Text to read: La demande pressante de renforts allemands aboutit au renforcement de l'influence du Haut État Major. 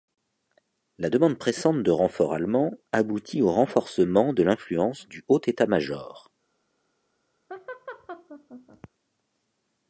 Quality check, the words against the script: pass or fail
pass